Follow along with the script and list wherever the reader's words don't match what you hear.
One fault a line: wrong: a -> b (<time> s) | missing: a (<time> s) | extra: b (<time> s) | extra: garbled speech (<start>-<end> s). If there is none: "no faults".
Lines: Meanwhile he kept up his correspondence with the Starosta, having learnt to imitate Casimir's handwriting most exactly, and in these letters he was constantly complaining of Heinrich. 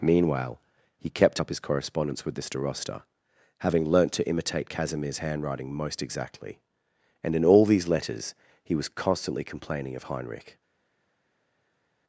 extra: all (7.4 s)